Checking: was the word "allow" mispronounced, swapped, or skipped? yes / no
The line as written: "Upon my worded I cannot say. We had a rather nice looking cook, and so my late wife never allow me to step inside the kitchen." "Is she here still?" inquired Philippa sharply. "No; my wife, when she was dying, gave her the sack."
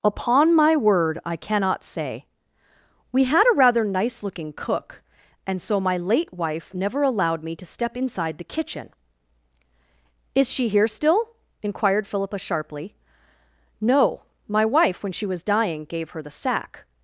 yes